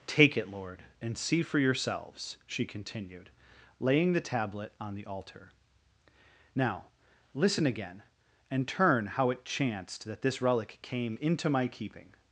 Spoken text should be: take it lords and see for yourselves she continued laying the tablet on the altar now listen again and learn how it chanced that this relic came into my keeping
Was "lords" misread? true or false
true